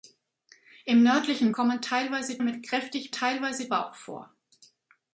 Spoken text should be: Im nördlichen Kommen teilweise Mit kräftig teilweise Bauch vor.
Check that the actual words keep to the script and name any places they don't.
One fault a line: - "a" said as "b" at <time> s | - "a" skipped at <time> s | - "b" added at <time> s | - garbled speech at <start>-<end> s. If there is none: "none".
none